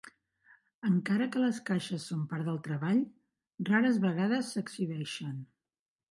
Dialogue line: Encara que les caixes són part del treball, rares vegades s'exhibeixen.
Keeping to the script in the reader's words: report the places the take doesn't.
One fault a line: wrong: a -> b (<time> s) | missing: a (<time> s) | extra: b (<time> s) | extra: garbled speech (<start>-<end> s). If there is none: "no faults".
no faults